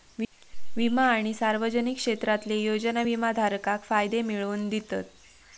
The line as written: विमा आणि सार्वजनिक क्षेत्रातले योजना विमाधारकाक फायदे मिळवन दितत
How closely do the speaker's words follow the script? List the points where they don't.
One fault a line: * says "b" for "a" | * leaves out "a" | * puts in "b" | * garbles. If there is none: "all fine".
all fine